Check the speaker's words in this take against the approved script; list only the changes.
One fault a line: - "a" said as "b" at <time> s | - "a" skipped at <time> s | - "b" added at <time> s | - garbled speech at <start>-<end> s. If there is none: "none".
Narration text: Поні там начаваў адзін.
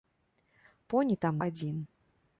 - "начаваў" skipped at 1.3 s